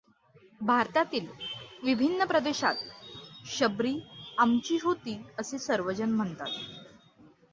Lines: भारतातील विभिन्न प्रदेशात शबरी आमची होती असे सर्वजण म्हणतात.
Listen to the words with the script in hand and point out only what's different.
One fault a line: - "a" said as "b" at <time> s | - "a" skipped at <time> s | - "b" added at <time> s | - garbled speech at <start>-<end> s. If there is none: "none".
none